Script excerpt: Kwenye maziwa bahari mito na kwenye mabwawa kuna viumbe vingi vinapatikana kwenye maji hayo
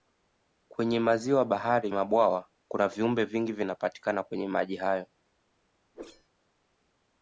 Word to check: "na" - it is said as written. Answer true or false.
false